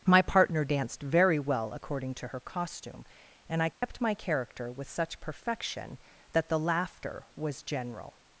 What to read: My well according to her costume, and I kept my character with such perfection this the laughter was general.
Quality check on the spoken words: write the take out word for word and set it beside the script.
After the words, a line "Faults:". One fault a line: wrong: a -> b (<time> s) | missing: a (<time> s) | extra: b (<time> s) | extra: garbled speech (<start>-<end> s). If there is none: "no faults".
My partner danced very well according to her costume, and I kept my character with such perfection that the laughter was general.
Faults:
extra: partner danced very (0.2 s)
wrong: this -> that (6.3 s)